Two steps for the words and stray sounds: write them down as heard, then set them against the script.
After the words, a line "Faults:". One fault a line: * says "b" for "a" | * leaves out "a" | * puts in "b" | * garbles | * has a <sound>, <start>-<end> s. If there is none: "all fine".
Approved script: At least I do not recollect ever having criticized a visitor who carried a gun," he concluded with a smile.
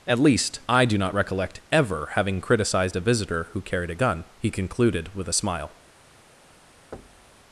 At least I do not recollect ever having criticized a visitor who carried a gun," he concluded with a smile.
Faults:
* has a thud, 6.9-7.4 s